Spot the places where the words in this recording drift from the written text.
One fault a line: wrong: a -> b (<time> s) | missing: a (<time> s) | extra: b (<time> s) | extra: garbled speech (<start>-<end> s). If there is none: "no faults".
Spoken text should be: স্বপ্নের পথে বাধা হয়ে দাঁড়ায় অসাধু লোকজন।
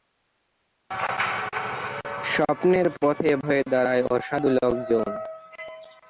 missing: বাধা (3.3 s)